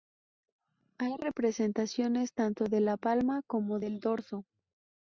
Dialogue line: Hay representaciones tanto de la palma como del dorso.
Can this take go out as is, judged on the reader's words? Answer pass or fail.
pass